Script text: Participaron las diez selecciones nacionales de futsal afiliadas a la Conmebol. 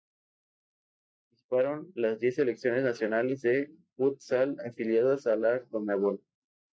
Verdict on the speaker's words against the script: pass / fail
pass